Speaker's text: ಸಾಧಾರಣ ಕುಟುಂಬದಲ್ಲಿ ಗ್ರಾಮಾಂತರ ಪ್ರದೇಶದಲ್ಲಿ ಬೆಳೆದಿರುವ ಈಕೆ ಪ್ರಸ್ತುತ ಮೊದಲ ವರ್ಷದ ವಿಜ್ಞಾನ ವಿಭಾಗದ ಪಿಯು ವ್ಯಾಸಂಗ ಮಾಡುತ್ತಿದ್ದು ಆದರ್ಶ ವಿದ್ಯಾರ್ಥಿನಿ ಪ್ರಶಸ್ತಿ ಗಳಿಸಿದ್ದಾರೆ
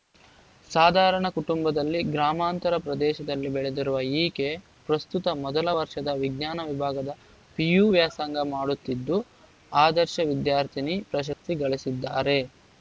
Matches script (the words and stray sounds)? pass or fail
fail